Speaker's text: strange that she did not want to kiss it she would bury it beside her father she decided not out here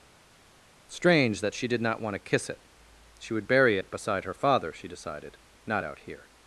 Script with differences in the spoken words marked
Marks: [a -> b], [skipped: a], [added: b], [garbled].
strange that she did not want to kiss it she would bury it beside her father she decided not out here